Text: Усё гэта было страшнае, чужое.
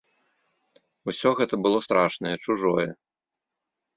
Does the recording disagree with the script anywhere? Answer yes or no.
no